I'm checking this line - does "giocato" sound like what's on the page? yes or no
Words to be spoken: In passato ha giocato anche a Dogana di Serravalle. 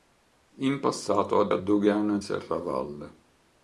no